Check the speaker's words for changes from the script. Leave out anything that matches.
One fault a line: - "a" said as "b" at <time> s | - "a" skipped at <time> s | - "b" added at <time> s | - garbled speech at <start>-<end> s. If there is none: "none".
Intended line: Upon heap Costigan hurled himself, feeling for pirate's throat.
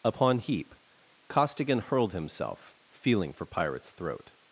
none